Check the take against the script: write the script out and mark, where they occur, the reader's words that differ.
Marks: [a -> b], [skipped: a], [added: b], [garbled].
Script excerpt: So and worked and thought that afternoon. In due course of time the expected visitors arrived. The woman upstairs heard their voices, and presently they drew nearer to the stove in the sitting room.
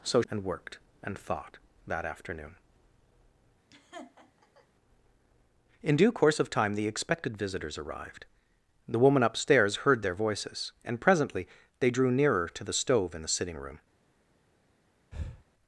So and worked and thought that afternoon. In due course of time the expected visitors arrived. The woman upstairs heard their voices, and presently they drew nearer to the stove in the sitting room.